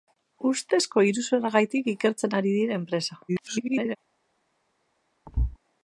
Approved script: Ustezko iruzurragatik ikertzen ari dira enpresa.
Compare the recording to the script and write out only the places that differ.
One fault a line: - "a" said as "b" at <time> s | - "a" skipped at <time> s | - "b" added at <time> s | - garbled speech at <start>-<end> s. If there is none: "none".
- garbled speech at 3.3-4.0 s